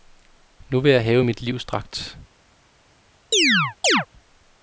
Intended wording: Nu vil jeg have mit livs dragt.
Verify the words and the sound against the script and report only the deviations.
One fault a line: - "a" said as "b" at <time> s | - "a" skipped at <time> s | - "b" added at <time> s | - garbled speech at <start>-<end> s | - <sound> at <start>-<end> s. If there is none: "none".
- chirp at 3.3-4.1 s